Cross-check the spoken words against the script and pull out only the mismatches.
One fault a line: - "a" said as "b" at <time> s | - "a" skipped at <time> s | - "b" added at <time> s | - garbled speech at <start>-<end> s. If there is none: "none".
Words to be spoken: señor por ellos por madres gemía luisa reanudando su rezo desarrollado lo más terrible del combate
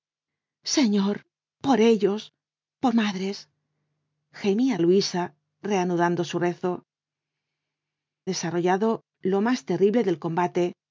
none